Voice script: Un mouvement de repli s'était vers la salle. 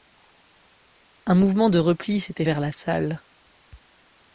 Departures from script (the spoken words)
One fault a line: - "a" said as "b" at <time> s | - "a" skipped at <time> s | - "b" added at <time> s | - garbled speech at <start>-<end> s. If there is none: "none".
none